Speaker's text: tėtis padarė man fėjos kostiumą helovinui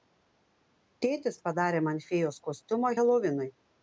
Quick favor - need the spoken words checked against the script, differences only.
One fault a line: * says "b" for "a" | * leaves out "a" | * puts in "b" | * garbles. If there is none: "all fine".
all fine